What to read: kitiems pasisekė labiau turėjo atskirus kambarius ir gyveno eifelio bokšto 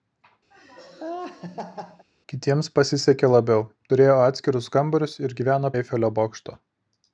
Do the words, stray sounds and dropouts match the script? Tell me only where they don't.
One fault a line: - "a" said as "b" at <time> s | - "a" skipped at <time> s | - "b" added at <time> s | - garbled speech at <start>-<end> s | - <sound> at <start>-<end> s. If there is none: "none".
- laugh at 0.5-2.1 s